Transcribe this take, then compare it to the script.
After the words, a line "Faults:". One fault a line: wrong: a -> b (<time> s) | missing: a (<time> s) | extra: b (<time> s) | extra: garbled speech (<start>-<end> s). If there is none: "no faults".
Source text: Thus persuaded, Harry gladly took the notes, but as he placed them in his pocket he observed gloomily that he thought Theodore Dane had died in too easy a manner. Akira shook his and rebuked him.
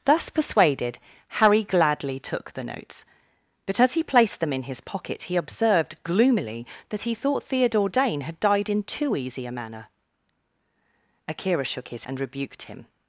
Thus persuaded, Harry gladly took the notes, but as he placed them in his pocket he observed gloomily that he thought Theodore Dane had died in too easy a manner. Akira shook his and rebuked him.
Faults:
no faults